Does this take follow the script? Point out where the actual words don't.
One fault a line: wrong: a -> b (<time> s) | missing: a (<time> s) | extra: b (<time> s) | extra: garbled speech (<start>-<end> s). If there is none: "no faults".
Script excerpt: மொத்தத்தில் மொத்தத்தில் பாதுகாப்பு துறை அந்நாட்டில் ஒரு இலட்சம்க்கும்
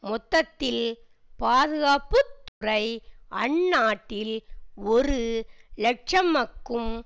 missing: மொத்தத்தில் (0.8 s)